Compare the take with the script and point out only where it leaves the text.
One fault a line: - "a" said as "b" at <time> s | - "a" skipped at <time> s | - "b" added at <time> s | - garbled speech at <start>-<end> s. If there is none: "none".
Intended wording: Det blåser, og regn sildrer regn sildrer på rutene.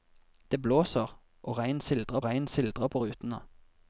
none